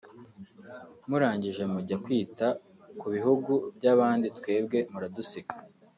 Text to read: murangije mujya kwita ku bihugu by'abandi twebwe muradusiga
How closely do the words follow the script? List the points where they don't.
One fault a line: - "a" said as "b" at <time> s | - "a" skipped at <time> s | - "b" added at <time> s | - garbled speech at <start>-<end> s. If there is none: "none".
none